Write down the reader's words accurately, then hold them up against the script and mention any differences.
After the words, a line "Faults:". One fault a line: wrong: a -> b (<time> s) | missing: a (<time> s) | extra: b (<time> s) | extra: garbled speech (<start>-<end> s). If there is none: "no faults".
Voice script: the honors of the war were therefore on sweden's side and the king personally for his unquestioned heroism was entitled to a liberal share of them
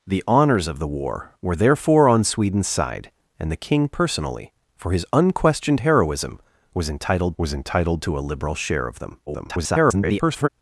the honors of the war were therefore on sweden's side and the king personally for his unquestioned heroism was entitled was entitled to a liberal share of them [garbled]
Faults:
extra: was entitled (7.4 s)
extra: garbled speech (9.3-10.5 s)